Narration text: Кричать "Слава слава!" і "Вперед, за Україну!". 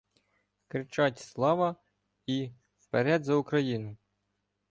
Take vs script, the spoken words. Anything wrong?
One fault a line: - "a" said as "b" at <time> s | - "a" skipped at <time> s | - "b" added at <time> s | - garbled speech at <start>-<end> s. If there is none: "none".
- "слава" skipped at 1.8 s